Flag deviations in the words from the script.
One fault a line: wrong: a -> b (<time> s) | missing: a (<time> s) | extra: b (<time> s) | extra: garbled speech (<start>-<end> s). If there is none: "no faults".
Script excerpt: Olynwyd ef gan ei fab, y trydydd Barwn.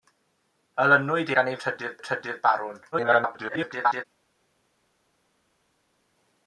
missing: ef (1.3 s)
wrong: fab -> trydydd (1.6 s)
extra: garbled speech (2.9-4.0 s)